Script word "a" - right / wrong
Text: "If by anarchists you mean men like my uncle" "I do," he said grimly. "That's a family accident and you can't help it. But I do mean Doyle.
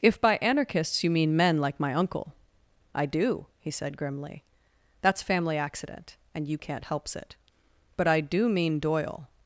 wrong